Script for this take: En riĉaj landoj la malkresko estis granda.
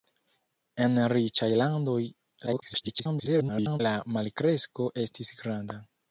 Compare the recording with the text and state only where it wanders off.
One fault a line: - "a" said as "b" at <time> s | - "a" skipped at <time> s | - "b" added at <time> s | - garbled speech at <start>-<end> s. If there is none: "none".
- garbled speech at 2.5-3.8 s